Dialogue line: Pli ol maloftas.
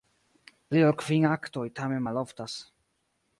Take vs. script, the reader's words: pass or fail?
fail